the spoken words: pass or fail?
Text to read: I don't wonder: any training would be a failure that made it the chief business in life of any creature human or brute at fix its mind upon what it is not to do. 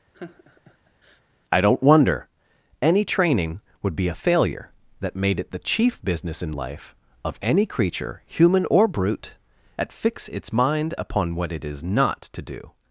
pass